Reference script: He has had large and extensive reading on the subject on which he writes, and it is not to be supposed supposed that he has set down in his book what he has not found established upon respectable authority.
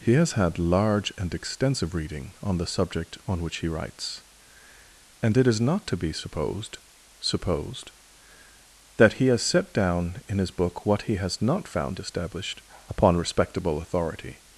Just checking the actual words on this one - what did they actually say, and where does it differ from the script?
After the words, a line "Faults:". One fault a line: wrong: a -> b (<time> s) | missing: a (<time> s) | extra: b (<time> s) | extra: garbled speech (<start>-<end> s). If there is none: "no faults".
He has had large and extensive reading on the subject on which he writes, and it is not to be supposed supposed that he has set down in his book what he has not found established upon respectable authority.
Faults:
no faults